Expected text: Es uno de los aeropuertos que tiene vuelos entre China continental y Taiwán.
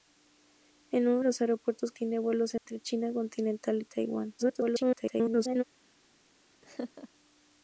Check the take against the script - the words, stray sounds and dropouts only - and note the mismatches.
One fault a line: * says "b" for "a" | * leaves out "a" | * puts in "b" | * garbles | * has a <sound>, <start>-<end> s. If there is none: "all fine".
* leaves out "de"
* leaves out "que"
* has a dropout, 2.6-2.7 s
* garbles
* has a laugh, 6.6-7.1 s